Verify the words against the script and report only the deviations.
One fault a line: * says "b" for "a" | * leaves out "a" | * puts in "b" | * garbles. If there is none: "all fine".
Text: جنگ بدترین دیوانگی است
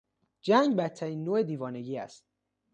* puts in "نوع"